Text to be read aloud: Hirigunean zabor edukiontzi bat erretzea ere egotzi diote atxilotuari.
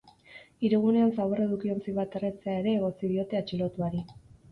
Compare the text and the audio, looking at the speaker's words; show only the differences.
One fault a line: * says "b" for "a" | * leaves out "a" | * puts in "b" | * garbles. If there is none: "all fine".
all fine